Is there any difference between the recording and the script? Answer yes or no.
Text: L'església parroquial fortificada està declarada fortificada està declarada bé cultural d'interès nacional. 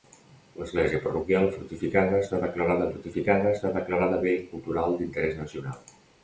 no